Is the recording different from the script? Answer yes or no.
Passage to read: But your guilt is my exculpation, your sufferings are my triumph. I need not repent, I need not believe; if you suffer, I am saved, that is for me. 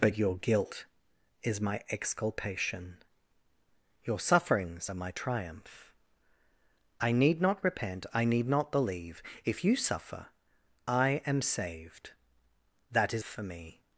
no